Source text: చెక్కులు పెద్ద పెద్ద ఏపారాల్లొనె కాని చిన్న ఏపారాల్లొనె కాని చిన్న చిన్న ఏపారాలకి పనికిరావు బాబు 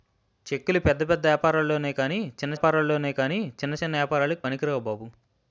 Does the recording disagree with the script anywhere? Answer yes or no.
no